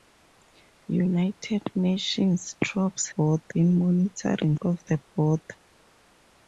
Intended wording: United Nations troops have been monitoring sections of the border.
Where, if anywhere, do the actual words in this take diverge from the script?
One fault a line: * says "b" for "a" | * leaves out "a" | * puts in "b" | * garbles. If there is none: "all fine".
* says "border" for "have"
* leaves out "sections"